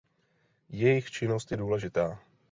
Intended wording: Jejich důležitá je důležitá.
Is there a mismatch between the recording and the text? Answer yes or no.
yes